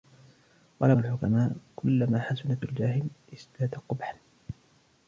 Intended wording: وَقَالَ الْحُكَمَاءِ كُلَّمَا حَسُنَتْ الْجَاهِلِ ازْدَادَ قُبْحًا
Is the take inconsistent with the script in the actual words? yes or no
no